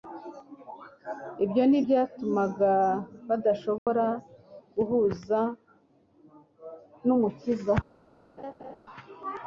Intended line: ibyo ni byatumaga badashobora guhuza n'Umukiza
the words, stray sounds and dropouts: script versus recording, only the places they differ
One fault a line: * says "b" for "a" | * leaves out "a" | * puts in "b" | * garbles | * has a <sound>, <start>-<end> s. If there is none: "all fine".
* has a dropout, 3.8-3.9 s
* has a laugh, 8.4-8.8 s